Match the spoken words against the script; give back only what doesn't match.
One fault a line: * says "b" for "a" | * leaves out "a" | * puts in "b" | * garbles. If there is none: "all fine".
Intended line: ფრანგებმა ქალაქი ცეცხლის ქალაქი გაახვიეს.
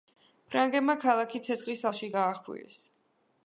* says "ალში" for "ქალაქი"